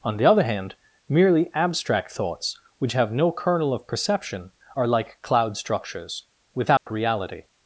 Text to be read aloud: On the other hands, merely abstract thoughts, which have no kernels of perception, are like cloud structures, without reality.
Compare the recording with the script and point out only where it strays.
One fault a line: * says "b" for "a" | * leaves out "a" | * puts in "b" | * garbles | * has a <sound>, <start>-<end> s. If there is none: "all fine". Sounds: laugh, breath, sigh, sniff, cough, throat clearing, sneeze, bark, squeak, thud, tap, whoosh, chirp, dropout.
* says "hand" for "hands"
* says "kernel" for "kernels"
* has a dropout, 6.8-6.9 s